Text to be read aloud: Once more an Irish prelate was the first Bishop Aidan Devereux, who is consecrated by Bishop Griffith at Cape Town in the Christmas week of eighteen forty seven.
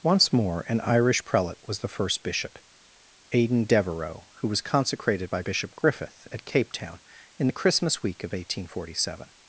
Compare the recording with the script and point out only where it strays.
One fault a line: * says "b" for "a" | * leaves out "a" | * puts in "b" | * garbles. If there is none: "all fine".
* says "was" for "is"